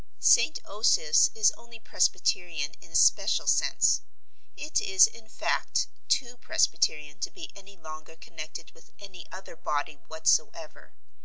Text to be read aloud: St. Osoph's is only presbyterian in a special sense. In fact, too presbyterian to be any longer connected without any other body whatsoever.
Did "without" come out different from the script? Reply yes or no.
yes